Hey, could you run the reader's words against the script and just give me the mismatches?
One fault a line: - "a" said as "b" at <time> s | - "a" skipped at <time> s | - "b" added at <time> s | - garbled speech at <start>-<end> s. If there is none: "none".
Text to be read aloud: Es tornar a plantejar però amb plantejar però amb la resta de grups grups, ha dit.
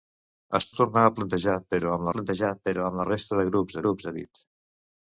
none